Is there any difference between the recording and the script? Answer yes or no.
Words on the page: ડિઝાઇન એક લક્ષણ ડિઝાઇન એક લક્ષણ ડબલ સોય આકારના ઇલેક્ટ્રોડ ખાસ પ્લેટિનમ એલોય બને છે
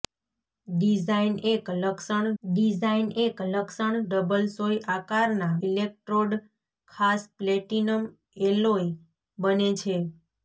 no